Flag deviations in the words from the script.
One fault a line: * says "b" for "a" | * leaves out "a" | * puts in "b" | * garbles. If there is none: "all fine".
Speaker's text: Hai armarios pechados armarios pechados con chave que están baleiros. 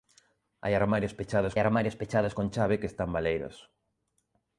all fine